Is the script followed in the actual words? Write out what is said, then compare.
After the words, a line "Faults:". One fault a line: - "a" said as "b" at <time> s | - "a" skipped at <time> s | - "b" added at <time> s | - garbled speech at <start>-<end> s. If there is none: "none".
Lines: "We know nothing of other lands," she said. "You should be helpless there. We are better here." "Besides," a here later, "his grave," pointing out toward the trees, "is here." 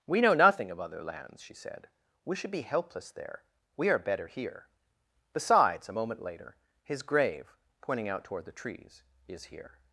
"We know nothing of other lands," she said. "We should be helpless there. We are better here." "Besides," a moment later, "his grave," pointing out toward the trees, "is here."
Faults:
- "You" said as "We" at 2.2 s
- "here" said as "moment" at 6.0 s